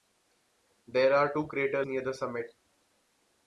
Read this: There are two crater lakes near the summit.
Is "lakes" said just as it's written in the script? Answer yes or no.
no